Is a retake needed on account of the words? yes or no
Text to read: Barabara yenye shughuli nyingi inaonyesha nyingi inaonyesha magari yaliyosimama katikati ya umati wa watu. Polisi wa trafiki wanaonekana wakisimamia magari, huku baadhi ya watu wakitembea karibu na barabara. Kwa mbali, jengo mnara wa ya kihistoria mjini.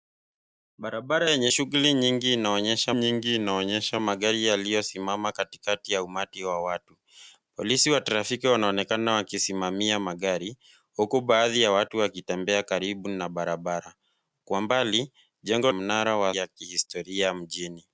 no